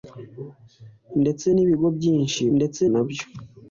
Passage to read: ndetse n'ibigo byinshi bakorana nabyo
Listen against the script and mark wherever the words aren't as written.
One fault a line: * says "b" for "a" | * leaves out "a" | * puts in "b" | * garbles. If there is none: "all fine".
* says "ndetse" for "bakorana"